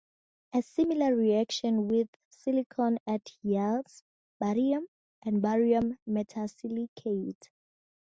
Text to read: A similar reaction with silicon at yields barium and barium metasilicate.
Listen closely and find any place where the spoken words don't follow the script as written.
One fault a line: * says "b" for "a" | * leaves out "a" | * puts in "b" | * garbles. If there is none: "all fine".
all fine